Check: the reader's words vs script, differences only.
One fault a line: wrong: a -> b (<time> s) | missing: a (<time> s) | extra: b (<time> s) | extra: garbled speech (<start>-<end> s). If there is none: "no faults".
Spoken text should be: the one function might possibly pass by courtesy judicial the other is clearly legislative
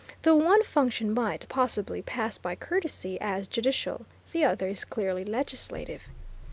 extra: as (3.2 s)